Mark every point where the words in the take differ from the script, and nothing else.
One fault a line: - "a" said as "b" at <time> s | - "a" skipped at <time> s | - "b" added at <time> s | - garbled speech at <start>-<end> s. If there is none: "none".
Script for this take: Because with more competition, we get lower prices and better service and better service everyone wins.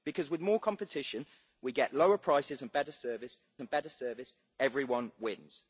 none